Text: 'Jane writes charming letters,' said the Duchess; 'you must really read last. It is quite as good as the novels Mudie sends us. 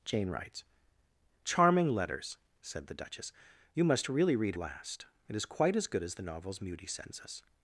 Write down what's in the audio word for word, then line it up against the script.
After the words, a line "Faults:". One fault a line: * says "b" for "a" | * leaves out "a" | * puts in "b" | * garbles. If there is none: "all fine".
'Jane writes charming letters,' said the Duchess; 'you must really read last. It is quite as good as the novels Mudie sends us.
Faults:
all fine